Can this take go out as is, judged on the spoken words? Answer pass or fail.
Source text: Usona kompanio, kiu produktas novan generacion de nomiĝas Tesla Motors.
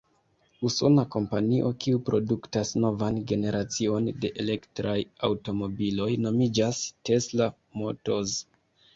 fail